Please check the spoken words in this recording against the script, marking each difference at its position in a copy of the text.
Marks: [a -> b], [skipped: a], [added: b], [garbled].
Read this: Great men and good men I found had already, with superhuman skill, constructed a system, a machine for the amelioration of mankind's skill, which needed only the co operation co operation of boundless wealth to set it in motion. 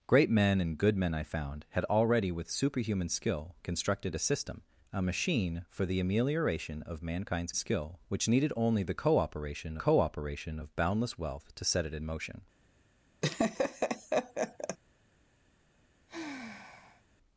Great men and good men I found had already, with superhuman skill, constructed a system, a machine for the amelioration of mankind's skill, which needed only the co operation co operation of boundless wealth to set it in motion.